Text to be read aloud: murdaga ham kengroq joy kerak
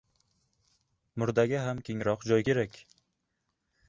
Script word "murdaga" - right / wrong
right